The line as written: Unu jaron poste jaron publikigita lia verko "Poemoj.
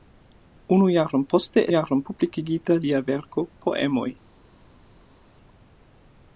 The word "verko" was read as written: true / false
true